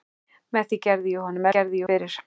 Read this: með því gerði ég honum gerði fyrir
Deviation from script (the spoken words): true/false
false